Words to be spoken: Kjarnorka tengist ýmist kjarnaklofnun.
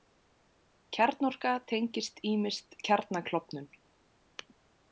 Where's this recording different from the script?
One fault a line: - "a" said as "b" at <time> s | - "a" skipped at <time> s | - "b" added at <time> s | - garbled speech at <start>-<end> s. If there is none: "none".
none